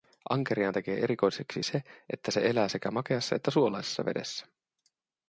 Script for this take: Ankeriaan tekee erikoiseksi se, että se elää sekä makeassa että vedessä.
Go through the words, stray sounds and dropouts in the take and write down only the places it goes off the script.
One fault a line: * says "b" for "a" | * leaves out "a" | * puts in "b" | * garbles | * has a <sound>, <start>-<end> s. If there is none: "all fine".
* puts in "suolaisessa"